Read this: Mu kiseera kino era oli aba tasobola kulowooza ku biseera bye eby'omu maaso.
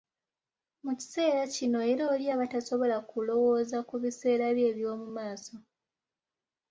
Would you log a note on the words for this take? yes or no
no